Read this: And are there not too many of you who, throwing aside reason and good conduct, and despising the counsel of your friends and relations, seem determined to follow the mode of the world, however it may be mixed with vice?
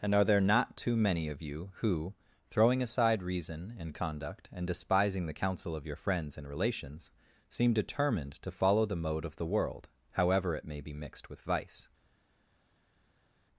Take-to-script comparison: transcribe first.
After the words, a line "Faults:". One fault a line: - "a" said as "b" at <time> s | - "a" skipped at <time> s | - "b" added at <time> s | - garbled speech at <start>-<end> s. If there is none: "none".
And are there not too many of you who, throwing aside reason and conduct, and despising the counsel of your friends and relations, seem determined to follow the mode of the world, however it may be mixed with vice?
Faults:
- "good" skipped at 3.9 s